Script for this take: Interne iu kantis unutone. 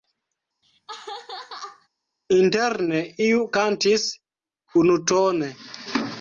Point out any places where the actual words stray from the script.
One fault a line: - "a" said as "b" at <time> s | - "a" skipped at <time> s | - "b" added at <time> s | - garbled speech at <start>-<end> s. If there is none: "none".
none